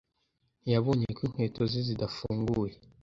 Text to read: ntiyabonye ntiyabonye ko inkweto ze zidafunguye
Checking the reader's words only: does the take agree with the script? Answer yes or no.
no